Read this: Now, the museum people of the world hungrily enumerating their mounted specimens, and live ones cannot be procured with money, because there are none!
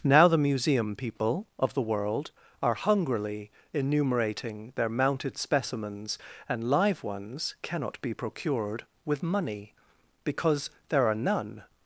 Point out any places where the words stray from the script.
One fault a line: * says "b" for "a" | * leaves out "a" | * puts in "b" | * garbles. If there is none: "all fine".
* puts in "are"